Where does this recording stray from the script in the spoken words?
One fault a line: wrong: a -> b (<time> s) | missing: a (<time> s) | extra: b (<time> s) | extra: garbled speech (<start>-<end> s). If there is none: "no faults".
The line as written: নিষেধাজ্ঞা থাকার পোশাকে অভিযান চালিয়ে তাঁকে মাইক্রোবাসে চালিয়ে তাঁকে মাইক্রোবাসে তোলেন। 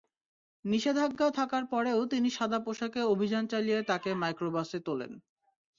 wrong: পোশাকে অভিযান চালিয়ে তাঁকে মাইক্রোবাসে -> পরেও তিনি সাদা পোশাকে অভিযান (1.6 s)